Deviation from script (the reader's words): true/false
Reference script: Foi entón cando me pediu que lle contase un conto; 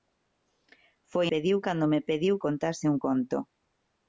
true